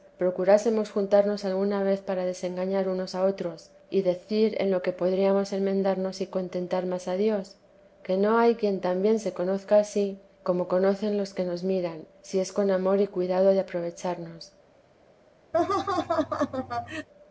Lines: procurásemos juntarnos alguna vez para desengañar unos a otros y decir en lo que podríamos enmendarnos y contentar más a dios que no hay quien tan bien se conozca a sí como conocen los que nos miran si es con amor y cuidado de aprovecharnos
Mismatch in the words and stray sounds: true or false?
true